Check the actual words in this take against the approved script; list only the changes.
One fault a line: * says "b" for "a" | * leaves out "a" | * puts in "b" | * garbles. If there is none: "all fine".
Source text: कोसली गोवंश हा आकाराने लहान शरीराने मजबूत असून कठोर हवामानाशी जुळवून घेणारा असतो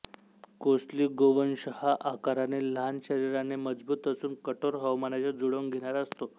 all fine